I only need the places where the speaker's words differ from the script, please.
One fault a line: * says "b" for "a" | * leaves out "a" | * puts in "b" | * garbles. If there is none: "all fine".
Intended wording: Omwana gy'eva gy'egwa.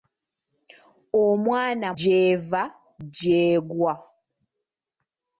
all fine